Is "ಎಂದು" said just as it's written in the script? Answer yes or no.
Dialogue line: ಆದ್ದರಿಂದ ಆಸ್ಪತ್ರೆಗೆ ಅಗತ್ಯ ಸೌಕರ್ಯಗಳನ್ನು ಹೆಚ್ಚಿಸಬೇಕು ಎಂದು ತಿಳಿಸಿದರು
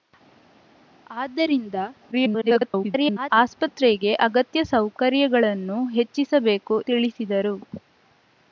no